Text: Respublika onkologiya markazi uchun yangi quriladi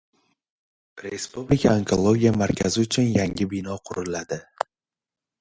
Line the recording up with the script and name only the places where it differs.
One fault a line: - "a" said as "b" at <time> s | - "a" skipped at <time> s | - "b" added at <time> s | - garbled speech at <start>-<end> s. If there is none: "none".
- "bino" added at 3.6 s